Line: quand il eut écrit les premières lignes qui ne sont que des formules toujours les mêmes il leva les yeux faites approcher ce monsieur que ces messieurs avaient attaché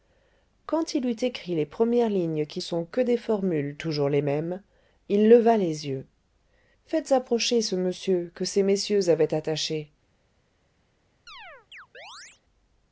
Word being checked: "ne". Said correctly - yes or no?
no